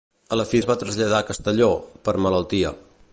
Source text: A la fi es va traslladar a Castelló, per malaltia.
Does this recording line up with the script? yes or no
yes